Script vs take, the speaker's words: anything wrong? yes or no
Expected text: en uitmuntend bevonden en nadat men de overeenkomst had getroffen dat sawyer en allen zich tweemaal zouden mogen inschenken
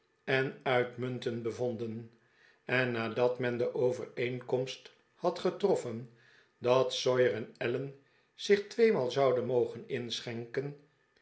no